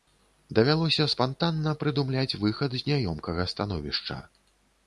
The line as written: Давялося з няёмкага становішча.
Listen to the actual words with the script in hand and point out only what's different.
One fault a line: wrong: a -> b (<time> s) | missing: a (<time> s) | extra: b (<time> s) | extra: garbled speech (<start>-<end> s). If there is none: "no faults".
extra: спантанна прыдумляць выхад (1.1 s)